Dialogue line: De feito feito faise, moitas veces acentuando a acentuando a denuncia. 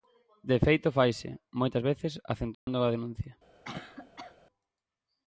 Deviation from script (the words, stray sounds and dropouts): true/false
true